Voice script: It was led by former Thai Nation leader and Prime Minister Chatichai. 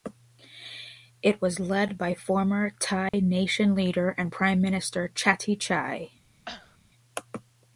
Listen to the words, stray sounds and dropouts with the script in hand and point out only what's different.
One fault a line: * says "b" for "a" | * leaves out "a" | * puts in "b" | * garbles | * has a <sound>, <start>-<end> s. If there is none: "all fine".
* has a dropout, 3.1-3.1 s
* has a cough, 6.5-6.8 s